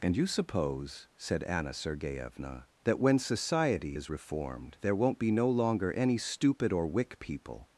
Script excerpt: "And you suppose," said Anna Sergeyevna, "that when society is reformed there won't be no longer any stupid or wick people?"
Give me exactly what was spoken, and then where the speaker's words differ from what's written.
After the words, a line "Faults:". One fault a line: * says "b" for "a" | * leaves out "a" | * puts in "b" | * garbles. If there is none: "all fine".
"And you suppose," said Anna Sergeyevna, "that when society is reformed there won't be no longer any stupid or wick people?"
Faults:
all fine